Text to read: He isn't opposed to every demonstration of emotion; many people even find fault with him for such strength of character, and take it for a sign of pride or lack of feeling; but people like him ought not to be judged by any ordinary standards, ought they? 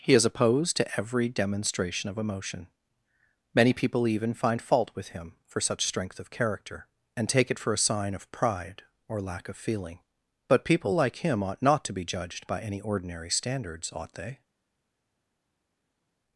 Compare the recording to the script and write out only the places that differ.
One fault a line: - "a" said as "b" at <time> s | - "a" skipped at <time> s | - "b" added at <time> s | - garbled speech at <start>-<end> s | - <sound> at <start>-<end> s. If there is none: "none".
- "isn't" said as "is" at 0.1 s